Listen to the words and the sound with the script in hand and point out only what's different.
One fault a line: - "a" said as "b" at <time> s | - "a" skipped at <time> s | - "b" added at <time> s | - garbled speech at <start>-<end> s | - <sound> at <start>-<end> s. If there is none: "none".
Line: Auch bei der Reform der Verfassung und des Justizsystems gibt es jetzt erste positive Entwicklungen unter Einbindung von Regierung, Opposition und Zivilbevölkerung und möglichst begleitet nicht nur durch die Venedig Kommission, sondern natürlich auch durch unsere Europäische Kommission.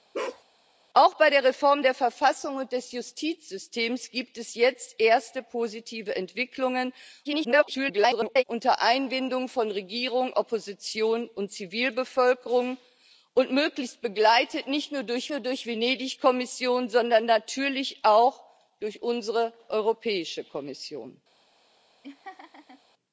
- bark at 0.1-0.4 s
- garbled speech at 7.2-8.4 s
- "nur durch" added at 15.3 s
- laugh at 22.0-22.8 s